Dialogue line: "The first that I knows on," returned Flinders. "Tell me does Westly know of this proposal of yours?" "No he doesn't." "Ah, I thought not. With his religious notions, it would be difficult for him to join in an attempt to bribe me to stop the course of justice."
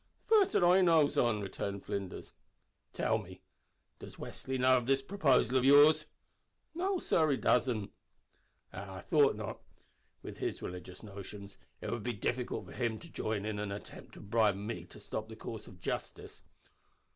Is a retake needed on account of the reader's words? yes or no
yes